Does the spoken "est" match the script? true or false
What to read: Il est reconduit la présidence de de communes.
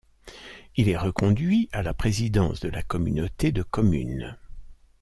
true